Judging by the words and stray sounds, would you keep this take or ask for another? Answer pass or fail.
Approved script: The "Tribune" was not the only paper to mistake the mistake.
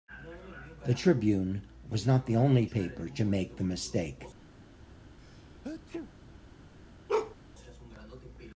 fail